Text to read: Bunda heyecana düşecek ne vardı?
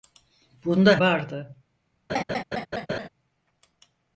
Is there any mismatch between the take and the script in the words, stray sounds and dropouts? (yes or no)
yes